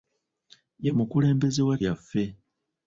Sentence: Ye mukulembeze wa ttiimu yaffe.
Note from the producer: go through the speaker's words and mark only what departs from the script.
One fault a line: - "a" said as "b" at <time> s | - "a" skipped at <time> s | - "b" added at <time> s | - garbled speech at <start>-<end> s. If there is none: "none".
- "ttiimu" skipped at 1.8 s